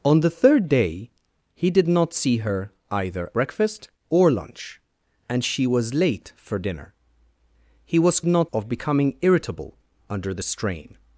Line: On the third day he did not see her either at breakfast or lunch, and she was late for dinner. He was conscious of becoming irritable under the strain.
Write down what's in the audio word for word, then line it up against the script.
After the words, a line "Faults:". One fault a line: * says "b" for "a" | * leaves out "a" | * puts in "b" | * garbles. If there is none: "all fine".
On the third day he did not see her either breakfast or lunch, and she was late for dinner. He was not of becoming irritable under the strain.
Faults:
* leaves out "at"
* says "not" for "conscious"